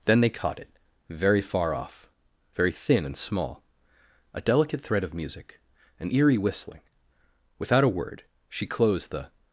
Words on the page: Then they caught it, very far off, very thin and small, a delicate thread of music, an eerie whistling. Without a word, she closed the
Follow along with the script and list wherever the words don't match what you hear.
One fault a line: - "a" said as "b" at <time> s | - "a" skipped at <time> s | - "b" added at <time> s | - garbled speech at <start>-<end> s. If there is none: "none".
none